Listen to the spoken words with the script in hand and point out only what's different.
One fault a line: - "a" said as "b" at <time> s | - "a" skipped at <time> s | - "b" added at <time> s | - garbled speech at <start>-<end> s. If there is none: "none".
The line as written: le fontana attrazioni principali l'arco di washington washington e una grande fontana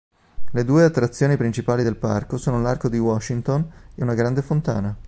- "fontana" said as "due" at 0.7 s
- "del parco sono" added at 1.8 s
- "washington" skipped at 3.7 s